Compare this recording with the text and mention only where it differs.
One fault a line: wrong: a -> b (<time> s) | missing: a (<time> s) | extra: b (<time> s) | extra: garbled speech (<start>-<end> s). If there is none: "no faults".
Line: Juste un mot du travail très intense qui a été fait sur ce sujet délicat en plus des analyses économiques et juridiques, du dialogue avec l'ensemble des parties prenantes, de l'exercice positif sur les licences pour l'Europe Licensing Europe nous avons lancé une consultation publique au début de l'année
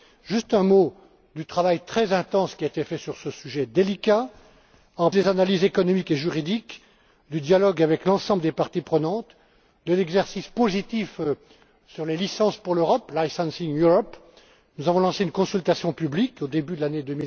missing: plus (5.1 s)